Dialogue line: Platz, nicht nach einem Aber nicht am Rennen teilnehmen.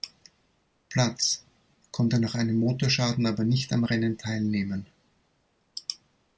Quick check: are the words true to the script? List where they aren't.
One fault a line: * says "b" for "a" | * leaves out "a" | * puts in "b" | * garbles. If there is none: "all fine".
* says "konnte" for "nicht"
* puts in "Motorschaden"